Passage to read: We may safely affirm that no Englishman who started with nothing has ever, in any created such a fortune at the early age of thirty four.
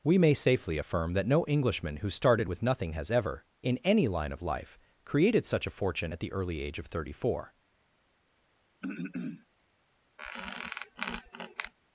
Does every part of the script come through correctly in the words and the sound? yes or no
no